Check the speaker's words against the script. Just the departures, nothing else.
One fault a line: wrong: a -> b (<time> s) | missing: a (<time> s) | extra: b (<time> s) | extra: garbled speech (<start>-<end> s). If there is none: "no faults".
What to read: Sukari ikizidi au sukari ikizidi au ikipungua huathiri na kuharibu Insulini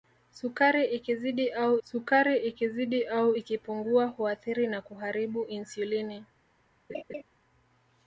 no faults